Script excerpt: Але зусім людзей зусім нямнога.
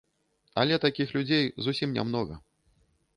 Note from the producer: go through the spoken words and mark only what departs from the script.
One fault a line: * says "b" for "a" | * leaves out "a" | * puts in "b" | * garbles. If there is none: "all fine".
* says "такіх" for "зусім"